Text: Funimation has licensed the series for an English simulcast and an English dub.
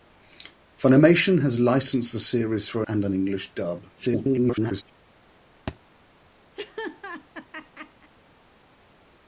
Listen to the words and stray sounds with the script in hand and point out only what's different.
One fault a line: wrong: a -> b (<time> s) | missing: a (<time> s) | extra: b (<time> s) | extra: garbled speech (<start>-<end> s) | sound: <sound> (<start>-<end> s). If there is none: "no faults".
missing: an English simulcast (2.8 s)
extra: garbled speech (3.9-4.8 s)
sound: thud (5.7-5.8 s)
sound: laugh (6.6-8.1 s)